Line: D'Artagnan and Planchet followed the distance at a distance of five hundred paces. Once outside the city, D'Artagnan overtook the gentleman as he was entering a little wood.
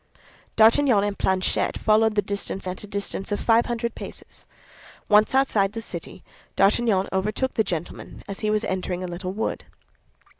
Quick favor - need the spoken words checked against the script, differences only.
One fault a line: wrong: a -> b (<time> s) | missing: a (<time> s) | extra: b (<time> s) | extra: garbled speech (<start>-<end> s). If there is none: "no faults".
no faults